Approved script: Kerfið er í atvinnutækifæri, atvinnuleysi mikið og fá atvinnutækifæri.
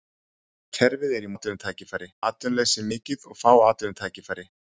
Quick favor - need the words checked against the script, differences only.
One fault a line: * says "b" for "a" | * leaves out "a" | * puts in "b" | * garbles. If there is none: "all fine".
all fine